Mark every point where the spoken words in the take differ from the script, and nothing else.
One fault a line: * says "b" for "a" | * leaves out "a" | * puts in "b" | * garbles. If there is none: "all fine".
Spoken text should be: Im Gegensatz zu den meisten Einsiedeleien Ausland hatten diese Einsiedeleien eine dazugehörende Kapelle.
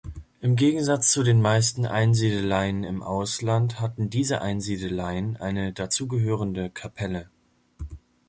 * puts in "im"